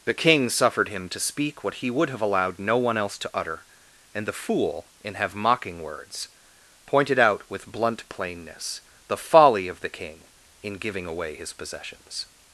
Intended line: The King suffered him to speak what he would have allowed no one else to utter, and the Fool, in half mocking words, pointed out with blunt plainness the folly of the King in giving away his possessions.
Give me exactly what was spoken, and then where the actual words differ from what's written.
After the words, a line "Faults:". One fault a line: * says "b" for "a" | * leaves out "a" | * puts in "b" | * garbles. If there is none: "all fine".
The King suffered him to speak what he would have allowed no one else to utter, and the Fool, in have mocking words, pointed out with blunt plainness the folly of the King in giving away his possessions.
Faults:
* says "have" for "half"